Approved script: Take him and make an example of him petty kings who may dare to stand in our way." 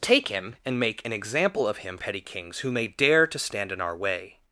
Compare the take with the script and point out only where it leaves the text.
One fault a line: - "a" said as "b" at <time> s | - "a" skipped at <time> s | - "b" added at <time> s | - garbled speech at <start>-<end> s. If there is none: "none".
none